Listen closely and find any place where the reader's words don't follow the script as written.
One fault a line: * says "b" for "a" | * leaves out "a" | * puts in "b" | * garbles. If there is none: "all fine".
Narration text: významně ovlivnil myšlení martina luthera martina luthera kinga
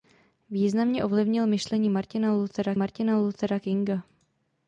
all fine